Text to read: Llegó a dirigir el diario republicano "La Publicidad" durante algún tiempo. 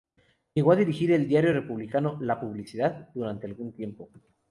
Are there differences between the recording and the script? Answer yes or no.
no